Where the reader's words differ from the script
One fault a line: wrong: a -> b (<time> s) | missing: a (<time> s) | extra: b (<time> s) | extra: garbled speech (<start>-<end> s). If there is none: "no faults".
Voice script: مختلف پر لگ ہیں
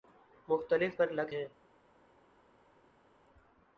no faults